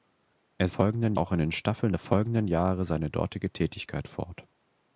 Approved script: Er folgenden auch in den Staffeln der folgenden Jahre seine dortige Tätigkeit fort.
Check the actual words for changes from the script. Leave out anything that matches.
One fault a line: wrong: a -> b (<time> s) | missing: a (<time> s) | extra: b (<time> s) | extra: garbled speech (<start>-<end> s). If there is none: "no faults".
no faults